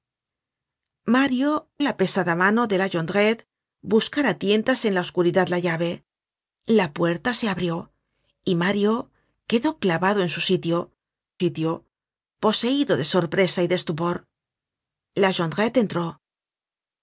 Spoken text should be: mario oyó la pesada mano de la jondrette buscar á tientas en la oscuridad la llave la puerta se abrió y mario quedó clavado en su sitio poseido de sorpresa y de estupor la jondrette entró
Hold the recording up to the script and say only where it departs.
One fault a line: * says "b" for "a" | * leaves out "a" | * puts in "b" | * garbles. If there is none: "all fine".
* leaves out "oyó"
* puts in "sitio"